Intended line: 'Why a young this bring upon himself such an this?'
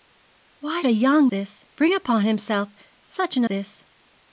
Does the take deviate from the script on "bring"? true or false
false